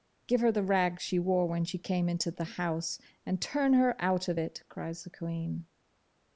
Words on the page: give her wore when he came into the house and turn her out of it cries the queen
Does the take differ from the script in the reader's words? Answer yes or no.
yes